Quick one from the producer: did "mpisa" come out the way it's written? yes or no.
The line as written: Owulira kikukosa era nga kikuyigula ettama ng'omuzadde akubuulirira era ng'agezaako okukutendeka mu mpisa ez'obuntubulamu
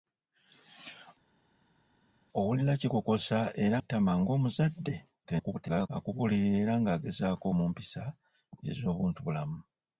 yes